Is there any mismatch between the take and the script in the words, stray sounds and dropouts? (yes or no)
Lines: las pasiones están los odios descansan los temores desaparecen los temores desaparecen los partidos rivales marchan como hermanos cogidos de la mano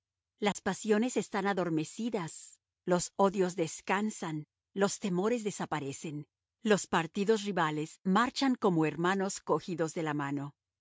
yes